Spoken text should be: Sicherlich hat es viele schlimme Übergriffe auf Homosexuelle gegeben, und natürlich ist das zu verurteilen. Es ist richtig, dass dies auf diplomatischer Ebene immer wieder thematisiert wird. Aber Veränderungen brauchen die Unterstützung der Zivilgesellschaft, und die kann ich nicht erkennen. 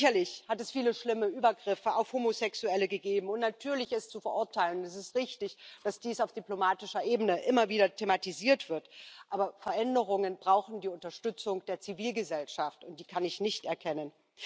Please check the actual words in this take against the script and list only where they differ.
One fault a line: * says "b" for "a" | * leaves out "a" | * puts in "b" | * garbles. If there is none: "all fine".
* leaves out "das"